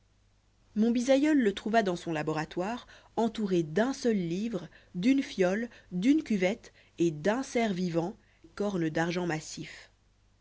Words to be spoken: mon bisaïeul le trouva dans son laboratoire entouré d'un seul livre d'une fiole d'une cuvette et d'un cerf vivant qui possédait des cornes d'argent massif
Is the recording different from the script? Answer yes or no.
yes